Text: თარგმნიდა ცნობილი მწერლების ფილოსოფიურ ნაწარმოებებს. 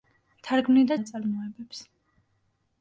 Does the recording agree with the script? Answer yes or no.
no